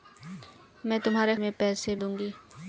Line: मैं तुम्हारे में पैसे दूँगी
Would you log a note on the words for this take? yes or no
no